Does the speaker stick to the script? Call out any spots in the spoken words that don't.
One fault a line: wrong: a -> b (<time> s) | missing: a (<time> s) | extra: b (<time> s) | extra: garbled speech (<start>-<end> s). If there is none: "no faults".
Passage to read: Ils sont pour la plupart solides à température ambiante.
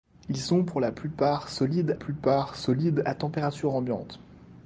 extra: plupart solides (1.9 s)